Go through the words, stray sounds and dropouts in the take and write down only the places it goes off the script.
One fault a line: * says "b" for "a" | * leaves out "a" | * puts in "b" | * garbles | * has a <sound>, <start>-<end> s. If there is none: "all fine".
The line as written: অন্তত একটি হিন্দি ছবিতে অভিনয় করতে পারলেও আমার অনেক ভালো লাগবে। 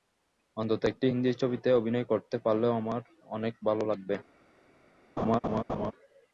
* has a laugh, 5.2-5.9 s